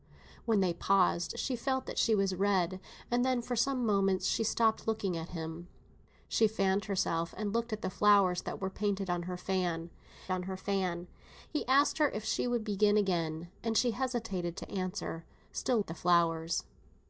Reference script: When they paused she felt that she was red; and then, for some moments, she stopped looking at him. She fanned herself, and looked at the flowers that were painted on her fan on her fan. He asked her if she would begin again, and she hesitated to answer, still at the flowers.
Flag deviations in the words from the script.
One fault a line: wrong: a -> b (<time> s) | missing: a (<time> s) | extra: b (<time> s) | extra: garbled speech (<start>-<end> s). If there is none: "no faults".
no faults